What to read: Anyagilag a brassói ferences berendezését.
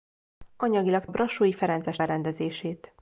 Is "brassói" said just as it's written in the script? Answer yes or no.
yes